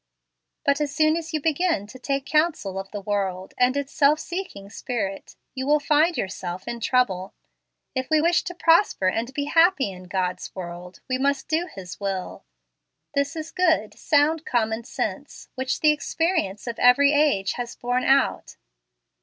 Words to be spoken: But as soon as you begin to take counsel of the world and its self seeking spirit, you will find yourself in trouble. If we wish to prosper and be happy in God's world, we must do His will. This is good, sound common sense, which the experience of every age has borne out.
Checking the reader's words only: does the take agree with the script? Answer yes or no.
yes